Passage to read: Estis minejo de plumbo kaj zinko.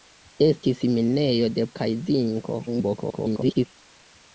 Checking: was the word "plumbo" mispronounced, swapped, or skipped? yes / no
yes